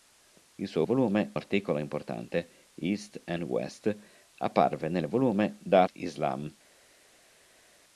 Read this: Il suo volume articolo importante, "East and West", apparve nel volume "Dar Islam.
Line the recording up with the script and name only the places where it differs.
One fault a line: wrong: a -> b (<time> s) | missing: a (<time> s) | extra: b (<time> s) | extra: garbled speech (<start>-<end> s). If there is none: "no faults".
no faults